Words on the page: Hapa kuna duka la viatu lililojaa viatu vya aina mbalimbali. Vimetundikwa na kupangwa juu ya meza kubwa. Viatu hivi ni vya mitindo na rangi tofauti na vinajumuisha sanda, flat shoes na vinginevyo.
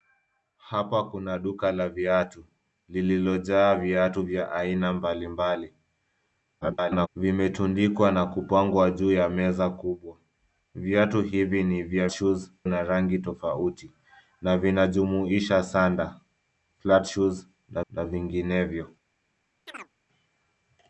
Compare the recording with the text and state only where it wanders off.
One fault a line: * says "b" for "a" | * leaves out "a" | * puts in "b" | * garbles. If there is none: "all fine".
* garbles
* says "shoes" for "mitindo"
* puts in "na"